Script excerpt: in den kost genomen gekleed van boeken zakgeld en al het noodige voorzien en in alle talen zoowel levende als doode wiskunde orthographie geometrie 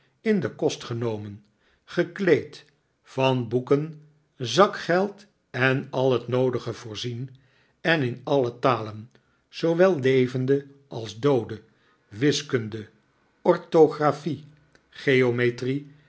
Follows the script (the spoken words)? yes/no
yes